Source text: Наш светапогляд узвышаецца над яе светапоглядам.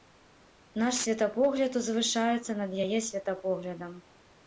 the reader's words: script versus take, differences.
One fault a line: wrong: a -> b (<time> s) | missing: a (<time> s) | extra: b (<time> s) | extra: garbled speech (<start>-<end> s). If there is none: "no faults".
no faults